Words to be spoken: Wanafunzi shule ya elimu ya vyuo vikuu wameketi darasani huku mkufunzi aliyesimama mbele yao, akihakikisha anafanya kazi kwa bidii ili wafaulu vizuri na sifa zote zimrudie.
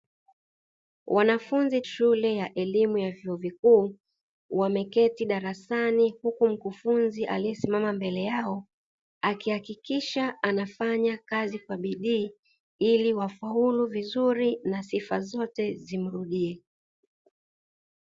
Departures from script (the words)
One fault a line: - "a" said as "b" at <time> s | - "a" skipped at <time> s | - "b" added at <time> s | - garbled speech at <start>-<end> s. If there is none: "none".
none